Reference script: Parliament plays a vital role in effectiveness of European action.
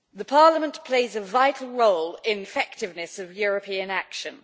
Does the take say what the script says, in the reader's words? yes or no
yes